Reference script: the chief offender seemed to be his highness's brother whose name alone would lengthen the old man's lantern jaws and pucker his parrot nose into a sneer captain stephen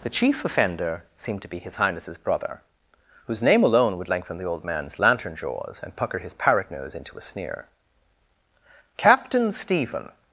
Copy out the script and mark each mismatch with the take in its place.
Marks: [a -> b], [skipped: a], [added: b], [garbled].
the chief offender seemed to be his highness's brother whose name alone would lengthen the old man's lantern jaws and pucker his parrot nose into a sneer captain stephen